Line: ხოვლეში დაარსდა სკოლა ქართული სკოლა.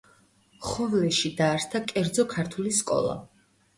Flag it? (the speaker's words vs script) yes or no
yes